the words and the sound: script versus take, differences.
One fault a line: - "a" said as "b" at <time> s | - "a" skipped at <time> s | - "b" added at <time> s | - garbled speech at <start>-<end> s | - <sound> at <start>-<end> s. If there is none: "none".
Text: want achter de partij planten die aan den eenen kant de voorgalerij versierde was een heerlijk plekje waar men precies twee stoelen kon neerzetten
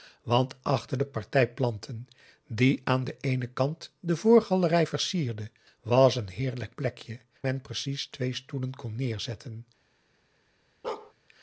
- "waar" skipped at 7.2 s
- bark at 10.8-11.1 s